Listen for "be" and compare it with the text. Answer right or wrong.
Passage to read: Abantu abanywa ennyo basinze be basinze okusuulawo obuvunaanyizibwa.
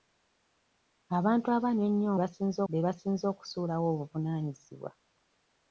right